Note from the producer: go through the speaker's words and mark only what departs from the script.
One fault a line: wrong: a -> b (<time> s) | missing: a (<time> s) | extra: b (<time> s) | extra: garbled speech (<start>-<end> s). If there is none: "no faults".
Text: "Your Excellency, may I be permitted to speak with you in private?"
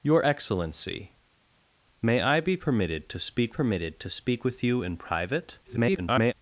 extra: permitted to speak (3.5 s)
extra: garbled speech (5.6-6.3 s)